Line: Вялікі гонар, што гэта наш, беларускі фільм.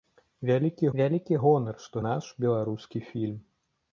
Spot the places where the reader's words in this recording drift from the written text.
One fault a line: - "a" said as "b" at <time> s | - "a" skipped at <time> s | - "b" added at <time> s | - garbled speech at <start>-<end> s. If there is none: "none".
- "вялікі" added at 1.0 s
- "гэта" skipped at 2.0 s